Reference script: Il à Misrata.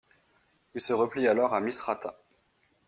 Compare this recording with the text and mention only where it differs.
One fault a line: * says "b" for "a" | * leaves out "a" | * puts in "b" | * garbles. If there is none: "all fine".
* puts in "se replie alors"